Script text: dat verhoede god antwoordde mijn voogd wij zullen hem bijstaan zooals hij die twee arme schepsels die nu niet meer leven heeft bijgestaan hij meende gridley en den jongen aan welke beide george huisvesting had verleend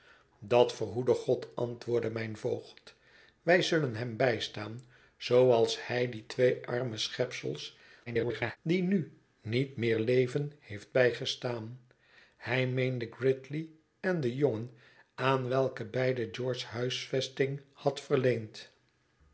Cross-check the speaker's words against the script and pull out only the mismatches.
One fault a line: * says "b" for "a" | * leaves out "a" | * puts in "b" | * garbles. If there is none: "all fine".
* garbles